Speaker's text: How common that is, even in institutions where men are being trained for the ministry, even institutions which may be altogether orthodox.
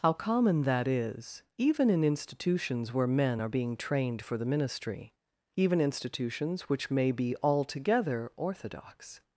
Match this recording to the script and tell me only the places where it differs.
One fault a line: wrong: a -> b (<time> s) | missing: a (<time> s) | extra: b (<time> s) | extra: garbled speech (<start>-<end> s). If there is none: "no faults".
no faults